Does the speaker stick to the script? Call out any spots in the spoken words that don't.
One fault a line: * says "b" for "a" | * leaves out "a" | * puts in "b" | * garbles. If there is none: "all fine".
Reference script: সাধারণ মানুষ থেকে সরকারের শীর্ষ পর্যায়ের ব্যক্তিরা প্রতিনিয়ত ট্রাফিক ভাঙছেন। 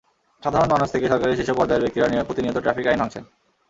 * puts in "আইন"